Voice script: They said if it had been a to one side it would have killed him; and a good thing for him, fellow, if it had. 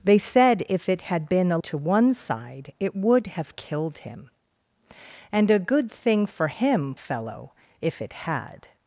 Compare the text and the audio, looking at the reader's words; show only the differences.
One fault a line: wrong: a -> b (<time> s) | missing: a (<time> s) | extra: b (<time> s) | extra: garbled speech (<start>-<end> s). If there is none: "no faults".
no faults